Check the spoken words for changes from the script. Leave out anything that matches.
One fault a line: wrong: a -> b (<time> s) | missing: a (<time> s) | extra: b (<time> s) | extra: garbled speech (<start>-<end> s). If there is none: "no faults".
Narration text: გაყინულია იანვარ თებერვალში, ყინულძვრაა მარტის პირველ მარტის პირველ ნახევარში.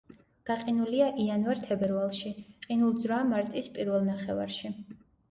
missing: მარტის პირველ (4.1 s)